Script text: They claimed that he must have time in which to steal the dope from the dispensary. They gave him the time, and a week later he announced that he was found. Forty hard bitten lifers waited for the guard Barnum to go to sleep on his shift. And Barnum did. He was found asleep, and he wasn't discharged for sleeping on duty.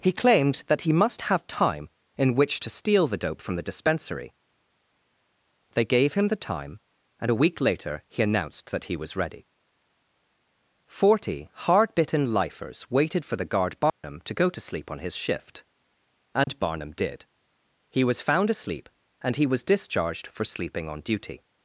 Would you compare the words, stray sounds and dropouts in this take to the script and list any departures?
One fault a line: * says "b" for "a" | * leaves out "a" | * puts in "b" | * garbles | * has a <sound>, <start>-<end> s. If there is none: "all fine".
* says "He" for "They"
* says "ready" for "found"
* has a dropout, 13.9-14.0 s
* has a dropout, 16.4-16.5 s
* says "was" for "wasn't"